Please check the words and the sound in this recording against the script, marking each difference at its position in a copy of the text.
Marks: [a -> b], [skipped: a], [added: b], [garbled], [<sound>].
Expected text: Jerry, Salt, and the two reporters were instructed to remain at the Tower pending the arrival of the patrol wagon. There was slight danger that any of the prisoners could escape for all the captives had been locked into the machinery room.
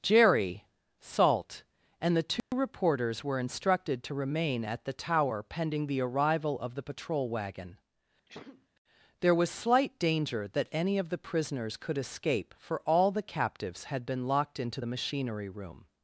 Jerry, Salt, and the two [dropout] reporters were instructed to remain at the Tower pending the arrival of the patrol wagon. [sneeze] There was slight danger that any of the prisoners could escape for all the captives had been locked into the machinery room.